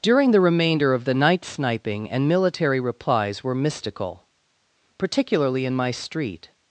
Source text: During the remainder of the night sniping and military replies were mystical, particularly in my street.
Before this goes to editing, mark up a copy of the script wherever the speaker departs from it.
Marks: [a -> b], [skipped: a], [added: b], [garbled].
During the remainder of the night sniping and military replies were mystical, particularly in my street.